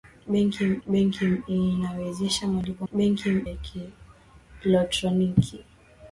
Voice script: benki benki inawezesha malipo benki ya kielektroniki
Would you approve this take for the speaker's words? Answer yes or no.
yes